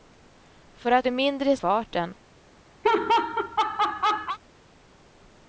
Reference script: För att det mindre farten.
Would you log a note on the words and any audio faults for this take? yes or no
yes